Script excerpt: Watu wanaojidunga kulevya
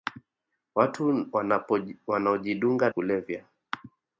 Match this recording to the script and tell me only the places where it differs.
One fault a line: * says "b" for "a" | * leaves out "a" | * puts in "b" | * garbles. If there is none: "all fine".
all fine